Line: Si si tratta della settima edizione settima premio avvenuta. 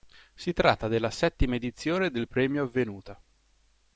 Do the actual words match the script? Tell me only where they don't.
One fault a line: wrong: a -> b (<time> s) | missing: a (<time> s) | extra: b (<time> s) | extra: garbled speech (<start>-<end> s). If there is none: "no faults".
missing: si (0.5 s)
wrong: settima -> del (2.1 s)